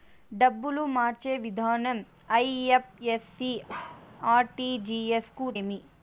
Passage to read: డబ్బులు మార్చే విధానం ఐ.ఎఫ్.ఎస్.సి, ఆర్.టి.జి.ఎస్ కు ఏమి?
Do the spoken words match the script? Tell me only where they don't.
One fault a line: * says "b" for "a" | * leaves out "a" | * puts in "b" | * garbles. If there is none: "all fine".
all fine